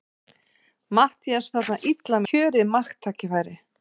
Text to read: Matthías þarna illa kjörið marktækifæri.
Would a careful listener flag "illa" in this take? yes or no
no